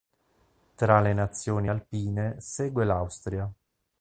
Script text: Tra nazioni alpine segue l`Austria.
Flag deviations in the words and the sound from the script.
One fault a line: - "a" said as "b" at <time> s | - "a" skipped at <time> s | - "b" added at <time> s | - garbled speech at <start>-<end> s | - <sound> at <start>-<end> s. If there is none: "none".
- "le" added at 1.0 s